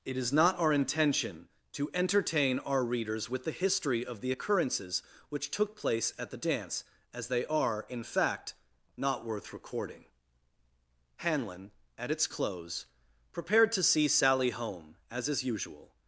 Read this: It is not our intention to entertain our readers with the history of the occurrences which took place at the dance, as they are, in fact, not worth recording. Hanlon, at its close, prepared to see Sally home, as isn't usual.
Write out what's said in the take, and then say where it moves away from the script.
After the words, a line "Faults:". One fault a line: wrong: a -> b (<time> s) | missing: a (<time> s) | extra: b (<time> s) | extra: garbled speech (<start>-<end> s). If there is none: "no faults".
It is not our intention to entertain our readers with the history of the occurrences which took place at the dance, as they are, in fact, not worth recording. Hanlon, at its close, prepared to see Sally home, as is usual.
Faults:
wrong: isn't -> is (15.3 s)